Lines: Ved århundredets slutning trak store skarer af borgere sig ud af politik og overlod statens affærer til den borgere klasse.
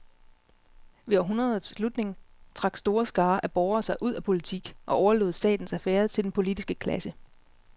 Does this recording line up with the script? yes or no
no